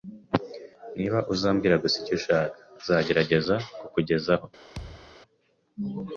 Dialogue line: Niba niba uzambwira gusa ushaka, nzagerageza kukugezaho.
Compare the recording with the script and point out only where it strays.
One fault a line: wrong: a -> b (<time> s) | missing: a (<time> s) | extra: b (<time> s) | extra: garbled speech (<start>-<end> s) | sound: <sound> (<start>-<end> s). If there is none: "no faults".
missing: niba (1.2 s)
extra: icyo (2.0 s)
sound: thud (4.8-5.2 s)